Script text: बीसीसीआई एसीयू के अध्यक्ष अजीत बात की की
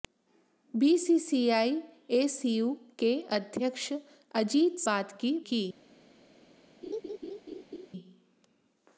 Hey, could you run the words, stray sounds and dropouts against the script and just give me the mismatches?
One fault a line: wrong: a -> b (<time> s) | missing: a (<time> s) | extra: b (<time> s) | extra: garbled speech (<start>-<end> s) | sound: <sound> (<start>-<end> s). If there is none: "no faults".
sound: laugh (6.8-7.9 s)